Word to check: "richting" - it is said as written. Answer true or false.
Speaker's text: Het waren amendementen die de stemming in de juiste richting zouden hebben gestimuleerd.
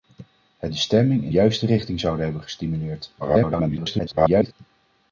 true